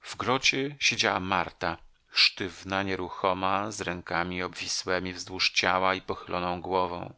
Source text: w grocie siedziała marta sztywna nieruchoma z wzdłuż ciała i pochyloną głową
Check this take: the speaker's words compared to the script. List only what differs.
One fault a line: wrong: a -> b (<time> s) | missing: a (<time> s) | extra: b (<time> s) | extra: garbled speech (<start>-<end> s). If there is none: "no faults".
extra: rękami obwisłemi (3.8 s)